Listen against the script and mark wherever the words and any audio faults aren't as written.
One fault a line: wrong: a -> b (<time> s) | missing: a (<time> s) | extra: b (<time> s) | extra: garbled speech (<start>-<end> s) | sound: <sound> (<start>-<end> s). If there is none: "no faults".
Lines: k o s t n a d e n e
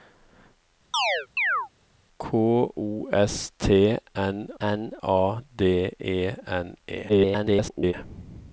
sound: chirp (0.9-1.7 s)
extra: n (4.6 s)
extra: garbled speech (7.1-7.9 s)